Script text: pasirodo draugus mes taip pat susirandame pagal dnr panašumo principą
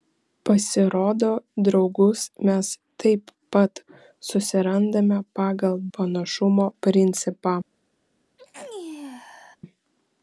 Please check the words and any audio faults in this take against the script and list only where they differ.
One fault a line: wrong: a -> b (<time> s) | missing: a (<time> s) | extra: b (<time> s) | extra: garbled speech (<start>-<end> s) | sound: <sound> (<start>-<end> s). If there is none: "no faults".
missing: dnr (5.8 s)
sound: sneeze (8.4-9.6 s)